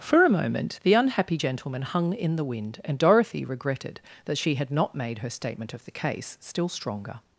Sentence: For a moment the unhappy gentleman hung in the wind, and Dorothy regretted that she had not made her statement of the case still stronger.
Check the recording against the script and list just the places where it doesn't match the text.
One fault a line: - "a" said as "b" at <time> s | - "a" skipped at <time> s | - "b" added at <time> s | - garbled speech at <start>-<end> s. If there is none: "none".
none